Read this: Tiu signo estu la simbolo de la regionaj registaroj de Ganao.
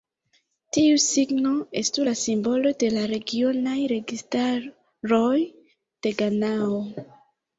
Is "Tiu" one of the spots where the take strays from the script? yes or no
no